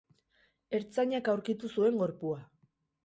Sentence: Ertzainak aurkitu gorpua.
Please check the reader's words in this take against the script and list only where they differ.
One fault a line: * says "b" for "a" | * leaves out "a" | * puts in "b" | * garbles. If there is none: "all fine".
* puts in "zuen"